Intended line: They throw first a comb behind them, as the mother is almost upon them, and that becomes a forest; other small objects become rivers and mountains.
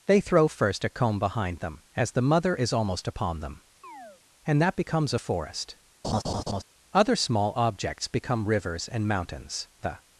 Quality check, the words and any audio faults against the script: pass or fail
fail